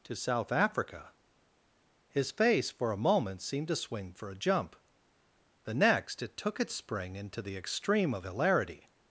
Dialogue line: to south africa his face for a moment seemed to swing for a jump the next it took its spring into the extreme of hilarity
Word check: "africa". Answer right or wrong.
right